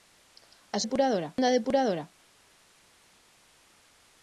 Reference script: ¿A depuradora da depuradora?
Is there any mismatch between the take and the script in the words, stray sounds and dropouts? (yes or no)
no